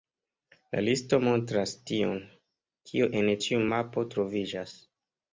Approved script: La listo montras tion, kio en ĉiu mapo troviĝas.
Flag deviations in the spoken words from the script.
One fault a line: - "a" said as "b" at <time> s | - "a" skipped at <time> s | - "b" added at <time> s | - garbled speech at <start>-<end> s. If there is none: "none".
none